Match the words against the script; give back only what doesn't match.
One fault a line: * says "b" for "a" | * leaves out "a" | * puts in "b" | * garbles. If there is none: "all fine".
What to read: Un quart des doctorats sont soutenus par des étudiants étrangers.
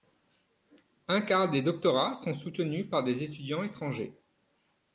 all fine